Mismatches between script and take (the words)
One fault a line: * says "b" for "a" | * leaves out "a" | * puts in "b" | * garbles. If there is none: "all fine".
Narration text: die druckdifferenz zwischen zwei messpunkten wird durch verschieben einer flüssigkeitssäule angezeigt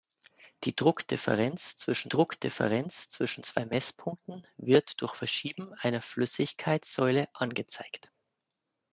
* puts in "druckdifferenz zwischen"